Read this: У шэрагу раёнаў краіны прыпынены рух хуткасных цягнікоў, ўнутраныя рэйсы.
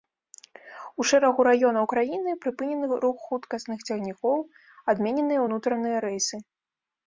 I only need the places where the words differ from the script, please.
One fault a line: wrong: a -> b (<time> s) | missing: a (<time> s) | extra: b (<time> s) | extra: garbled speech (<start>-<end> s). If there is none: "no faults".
extra: адмененыя (5.0 s)